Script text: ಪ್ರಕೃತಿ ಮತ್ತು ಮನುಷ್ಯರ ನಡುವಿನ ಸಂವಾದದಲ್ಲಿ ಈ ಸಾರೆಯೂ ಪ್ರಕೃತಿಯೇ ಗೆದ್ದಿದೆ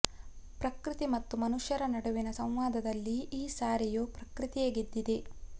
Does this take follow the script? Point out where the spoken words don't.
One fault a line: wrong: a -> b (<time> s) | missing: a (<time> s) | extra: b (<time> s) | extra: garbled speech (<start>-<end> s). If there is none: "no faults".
no faults